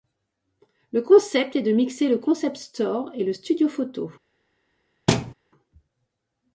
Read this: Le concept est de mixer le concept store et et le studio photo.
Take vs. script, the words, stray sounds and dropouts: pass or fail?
fail